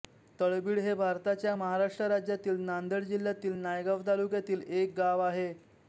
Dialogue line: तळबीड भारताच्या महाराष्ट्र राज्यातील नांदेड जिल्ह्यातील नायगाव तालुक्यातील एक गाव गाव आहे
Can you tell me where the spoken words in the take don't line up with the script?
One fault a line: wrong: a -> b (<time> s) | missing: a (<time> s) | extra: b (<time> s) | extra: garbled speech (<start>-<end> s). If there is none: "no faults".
extra: हे (0.8 s)
missing: गाव (5.2 s)